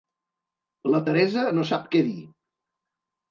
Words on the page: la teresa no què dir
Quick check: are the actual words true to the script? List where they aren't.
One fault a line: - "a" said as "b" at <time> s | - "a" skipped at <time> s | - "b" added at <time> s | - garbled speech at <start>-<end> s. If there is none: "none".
- "sap" added at 1.7 s